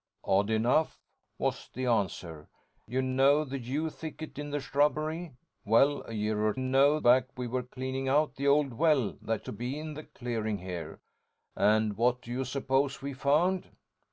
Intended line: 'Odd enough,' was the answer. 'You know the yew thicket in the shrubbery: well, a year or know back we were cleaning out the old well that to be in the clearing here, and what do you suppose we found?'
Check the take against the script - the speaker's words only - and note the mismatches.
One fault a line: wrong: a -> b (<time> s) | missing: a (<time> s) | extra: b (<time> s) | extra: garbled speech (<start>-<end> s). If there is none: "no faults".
no faults